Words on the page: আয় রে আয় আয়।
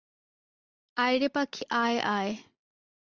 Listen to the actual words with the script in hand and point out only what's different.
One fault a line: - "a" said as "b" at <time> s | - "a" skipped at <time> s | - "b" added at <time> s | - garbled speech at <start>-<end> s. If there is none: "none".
- "পাখি" added at 1.3 s